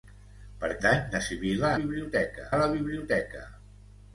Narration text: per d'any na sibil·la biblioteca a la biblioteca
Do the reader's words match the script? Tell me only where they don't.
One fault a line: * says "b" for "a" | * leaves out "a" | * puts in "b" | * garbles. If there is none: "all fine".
all fine